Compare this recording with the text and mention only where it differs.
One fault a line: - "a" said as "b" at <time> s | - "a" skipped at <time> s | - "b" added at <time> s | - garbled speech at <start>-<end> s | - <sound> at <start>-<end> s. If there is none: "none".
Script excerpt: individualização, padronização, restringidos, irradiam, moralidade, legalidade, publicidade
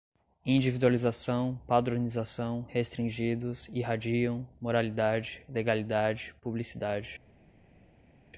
none